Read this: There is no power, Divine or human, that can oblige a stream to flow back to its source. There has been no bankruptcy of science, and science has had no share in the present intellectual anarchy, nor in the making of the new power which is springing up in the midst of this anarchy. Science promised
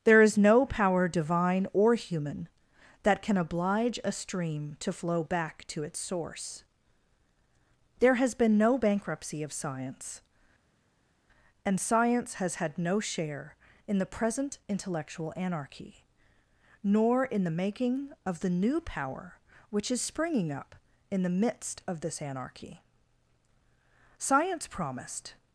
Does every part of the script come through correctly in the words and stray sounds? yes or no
yes